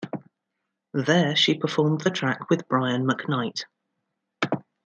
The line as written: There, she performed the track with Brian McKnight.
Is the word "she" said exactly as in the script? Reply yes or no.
yes